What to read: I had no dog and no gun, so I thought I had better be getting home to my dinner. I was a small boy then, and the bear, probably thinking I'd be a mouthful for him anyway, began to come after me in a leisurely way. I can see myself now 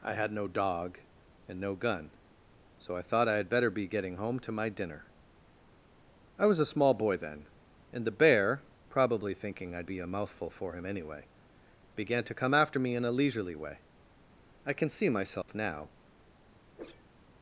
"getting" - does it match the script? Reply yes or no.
yes